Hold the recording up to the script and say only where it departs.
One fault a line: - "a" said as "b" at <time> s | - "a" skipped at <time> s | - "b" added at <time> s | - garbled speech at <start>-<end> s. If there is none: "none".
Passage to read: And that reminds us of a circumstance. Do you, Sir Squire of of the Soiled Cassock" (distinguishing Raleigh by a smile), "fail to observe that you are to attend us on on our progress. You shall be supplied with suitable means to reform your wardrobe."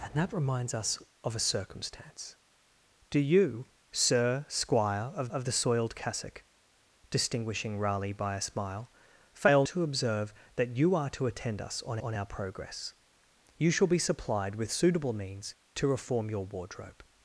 none